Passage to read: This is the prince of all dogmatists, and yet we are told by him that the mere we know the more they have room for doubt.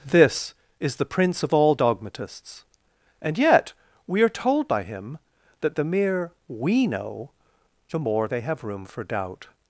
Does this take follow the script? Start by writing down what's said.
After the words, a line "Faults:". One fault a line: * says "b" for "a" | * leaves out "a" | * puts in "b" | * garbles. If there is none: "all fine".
This is the prince of all dogmatists, and yet we are told by him that the mere we know the more they have room for doubt.
Faults:
all fine